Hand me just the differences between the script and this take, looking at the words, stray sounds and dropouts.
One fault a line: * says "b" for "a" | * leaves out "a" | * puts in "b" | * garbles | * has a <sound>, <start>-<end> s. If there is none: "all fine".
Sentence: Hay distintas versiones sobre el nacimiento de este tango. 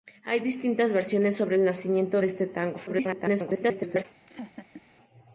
* garbles
* has a laugh, 4.3-4.8 s